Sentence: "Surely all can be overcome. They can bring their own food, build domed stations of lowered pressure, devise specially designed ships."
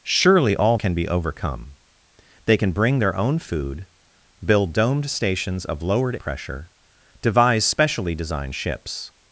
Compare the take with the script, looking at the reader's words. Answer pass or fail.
pass